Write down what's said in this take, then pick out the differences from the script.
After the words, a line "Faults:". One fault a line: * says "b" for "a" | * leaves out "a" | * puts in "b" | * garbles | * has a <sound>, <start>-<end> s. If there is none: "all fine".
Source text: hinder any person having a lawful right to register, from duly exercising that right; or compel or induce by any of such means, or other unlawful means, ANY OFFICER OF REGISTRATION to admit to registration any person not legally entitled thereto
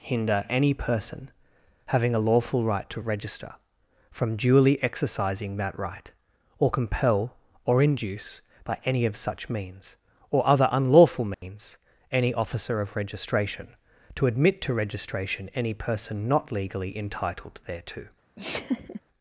hinder any person having a lawful right to register, from duly exercising that right; or compel or induce by any of such means, or other unlawful means, ANY OFFICER OF REGISTRATION to admit to registration any person not legally entitled thereto
Faults:
* has a dropout, 11.3-11.4 s
* has a laugh, 18.4-19.0 s